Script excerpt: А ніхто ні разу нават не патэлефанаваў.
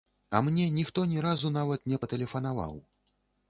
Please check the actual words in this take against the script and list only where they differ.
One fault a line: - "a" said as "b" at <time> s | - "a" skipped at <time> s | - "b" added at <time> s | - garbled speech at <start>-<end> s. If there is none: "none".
- "мне" added at 0.5 s